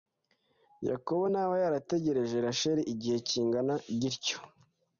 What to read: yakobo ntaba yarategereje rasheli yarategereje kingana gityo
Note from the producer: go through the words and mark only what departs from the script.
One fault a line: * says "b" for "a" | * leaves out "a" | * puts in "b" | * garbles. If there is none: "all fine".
* says "igihe" for "yarategereje"